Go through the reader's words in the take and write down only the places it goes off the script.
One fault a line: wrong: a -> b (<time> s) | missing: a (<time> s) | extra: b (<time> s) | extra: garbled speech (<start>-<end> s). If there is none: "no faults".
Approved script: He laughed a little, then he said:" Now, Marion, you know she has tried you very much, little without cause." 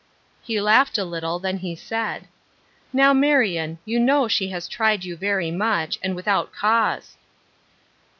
wrong: little -> and (6.0 s)